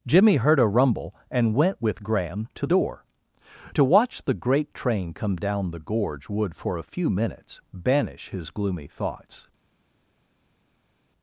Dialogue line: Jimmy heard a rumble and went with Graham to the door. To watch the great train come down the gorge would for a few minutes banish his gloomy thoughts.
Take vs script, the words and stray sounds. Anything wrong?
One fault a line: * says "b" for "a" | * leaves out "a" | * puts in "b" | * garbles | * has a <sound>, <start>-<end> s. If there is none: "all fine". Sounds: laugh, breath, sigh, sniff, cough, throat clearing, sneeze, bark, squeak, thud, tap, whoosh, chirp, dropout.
* leaves out "the"